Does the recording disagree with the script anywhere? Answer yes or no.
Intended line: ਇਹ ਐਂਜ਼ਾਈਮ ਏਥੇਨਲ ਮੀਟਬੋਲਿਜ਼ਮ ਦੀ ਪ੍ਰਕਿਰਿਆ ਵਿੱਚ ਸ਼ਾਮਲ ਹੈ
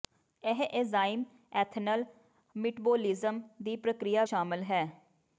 yes